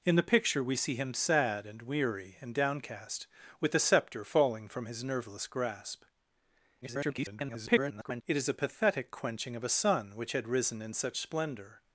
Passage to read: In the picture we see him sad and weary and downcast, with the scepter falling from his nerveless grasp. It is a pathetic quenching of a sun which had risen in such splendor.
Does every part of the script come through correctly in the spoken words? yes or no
no